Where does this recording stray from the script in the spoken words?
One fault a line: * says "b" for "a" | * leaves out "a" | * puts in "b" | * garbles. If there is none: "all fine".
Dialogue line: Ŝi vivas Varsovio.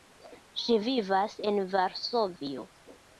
* puts in "en"